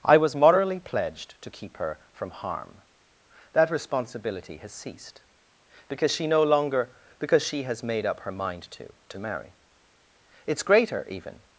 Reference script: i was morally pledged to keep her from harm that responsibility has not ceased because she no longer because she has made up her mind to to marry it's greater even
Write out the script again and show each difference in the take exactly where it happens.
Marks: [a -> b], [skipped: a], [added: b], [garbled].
i was morally pledged to keep her from harm that responsibility has [skipped: not] ceased because she no longer because she has made up her mind to to marry it's greater even